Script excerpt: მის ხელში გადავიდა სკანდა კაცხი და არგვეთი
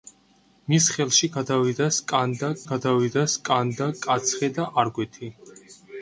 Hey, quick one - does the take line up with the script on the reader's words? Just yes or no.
no